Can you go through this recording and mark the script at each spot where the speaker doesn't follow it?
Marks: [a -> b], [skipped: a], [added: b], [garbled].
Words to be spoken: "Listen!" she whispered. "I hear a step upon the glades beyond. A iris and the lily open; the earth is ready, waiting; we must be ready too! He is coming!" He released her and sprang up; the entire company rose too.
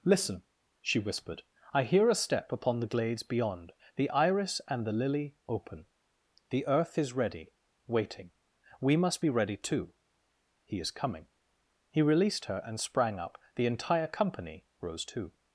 "Listen!" she whispered. "I hear a step upon the glades beyond. [A -> The] iris and the lily open; the earth is ready, waiting; we must be ready too! He is coming!" He released her and sprang up; the entire company rose too.